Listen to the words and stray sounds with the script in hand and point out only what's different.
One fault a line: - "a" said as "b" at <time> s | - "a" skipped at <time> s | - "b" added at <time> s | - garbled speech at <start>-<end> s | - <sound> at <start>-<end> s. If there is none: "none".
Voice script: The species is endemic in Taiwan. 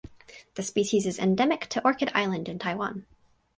- "to Orchid Island" added at 1.7 s